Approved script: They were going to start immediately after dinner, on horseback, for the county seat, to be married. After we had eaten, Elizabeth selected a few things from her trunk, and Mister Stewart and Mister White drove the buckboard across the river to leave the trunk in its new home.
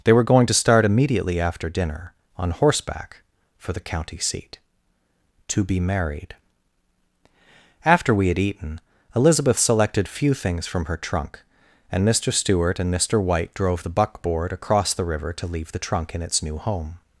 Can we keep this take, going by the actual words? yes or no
no